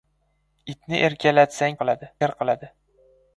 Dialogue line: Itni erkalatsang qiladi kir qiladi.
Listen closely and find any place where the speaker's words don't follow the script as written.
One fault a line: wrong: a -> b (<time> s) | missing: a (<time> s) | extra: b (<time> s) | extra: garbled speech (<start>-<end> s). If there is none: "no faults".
no faults